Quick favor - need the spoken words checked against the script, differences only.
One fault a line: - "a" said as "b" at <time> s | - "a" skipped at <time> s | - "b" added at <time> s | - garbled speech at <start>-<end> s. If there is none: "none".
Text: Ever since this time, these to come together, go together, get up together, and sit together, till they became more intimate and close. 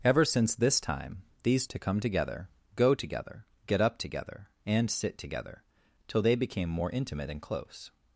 none